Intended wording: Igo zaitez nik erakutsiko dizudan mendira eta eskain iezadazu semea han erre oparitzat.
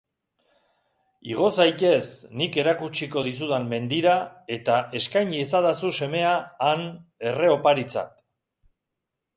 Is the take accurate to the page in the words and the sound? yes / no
yes